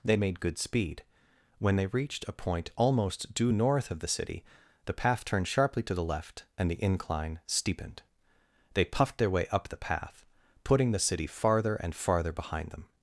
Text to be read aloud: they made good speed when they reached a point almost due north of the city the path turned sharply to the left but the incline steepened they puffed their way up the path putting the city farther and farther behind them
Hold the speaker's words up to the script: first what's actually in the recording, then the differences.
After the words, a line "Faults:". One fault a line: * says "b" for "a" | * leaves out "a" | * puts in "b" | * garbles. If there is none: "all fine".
they made good speed when they reached a point almost due north of the city the path turned sharply to the left and the incline steepened they puffed their way up the path putting the city farther and farther behind them
Faults:
* says "and" for "but"